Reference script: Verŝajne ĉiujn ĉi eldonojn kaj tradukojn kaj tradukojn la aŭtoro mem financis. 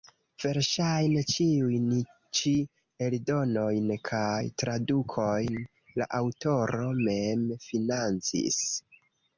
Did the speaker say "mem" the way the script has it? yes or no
yes